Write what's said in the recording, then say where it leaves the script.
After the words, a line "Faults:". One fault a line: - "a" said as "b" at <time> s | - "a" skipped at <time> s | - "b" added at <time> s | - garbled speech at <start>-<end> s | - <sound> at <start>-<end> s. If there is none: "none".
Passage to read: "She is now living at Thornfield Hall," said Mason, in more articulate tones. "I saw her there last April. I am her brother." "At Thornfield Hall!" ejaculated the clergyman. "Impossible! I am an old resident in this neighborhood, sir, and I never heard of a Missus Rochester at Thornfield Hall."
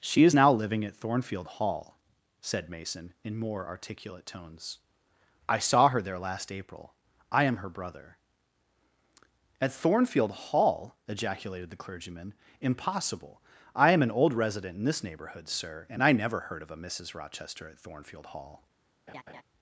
"She is now living at Thornfield Hall," said Mason, in more articulate tones. "I saw her there last April. I am her brother." "At Thornfield Hall!" ejaculated the clergyman. "Impossible! I am an old resident in this neighborhood, sir, and I never heard of a Missus Rochester at Thornfield Hall."
Faults:
- laugh at 19.1-19.4 s